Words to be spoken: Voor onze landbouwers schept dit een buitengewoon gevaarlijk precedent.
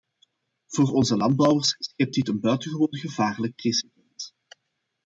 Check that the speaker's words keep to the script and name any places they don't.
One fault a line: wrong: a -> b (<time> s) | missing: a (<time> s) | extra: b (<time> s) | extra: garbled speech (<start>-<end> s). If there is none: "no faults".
no faults